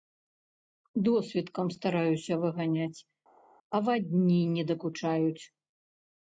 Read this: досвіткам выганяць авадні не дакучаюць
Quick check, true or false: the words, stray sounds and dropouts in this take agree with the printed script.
false